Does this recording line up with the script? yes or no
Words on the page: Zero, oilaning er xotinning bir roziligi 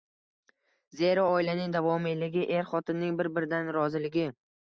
no